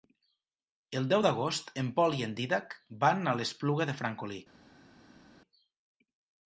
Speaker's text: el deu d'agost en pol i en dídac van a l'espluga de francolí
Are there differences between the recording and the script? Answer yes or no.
no